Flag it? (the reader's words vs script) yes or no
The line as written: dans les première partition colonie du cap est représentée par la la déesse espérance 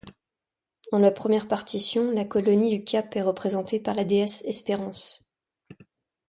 yes